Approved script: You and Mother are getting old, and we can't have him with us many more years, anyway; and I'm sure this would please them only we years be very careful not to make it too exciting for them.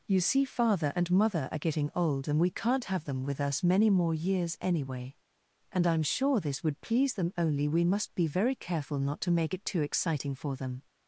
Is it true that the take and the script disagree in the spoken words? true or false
true